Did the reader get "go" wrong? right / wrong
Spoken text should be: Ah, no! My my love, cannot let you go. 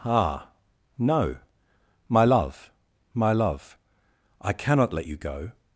right